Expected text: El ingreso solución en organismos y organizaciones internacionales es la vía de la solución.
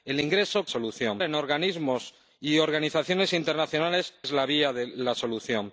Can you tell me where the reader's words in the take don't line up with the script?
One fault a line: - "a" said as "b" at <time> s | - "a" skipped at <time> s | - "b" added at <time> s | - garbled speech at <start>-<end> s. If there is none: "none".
none